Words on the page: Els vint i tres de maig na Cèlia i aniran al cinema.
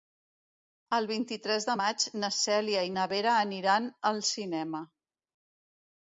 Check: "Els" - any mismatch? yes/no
yes